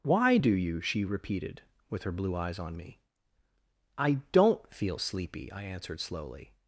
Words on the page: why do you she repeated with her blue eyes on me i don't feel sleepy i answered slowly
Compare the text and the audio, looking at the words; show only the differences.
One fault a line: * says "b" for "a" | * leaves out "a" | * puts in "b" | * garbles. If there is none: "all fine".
all fine